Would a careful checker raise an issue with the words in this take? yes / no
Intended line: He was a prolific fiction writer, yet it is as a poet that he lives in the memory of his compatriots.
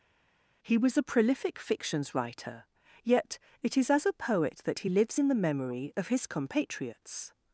yes